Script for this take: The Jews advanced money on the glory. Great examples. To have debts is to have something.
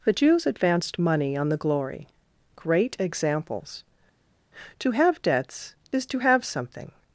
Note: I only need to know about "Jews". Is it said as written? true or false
true